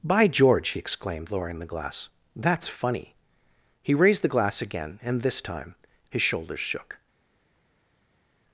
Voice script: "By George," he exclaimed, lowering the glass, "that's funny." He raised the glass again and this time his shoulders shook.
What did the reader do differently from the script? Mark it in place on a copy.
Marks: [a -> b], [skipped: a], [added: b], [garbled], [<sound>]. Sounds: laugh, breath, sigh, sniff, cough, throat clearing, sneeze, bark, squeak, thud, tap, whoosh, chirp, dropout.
"By George," he exclaimed, lowering the glass, "that's funny." He raised the glass again and this time his shoulders shook.